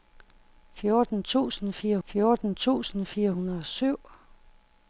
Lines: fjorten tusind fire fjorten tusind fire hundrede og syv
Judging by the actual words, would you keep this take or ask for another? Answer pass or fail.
pass